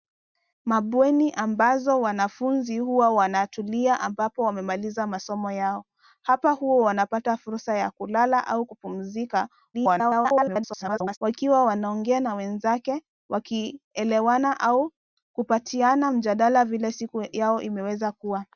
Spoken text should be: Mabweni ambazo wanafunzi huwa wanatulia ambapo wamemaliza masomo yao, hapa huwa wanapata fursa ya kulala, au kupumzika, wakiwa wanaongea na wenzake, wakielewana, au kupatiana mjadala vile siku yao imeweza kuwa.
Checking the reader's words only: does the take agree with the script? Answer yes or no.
no